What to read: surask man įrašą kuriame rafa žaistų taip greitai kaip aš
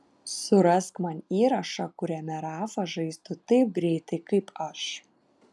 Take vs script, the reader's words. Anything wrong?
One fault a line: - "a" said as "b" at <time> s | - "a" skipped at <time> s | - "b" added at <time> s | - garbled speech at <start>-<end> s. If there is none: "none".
none